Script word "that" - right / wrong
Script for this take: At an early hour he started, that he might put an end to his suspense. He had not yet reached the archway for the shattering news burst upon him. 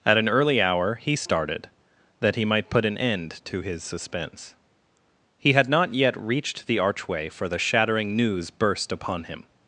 right